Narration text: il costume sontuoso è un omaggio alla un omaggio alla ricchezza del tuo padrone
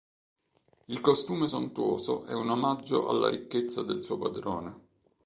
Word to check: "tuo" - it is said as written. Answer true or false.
false